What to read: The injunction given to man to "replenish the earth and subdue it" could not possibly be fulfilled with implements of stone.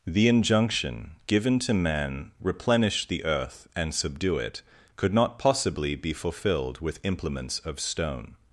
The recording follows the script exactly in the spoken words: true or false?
false